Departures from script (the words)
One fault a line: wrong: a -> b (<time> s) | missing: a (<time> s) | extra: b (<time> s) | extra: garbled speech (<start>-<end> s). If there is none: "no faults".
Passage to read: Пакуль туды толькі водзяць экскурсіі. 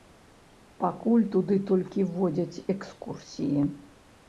no faults